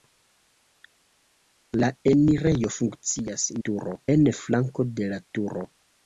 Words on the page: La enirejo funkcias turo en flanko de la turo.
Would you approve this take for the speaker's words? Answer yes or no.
yes